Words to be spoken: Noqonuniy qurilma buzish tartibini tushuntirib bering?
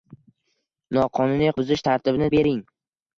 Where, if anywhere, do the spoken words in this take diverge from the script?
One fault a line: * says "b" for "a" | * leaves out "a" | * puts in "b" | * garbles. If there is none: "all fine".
* leaves out "qurilma"
* leaves out "tushuntirib"